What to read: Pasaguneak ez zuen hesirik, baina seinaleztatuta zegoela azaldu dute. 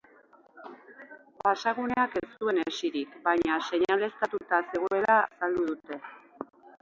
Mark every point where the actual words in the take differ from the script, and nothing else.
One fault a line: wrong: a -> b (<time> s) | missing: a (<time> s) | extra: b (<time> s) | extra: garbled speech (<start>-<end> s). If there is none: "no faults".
no faults